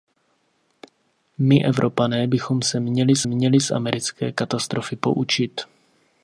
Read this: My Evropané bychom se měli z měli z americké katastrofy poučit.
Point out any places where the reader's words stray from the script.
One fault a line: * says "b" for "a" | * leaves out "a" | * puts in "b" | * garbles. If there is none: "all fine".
all fine